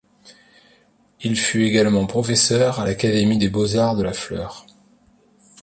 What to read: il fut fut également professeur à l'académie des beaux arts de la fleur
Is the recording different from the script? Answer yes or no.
yes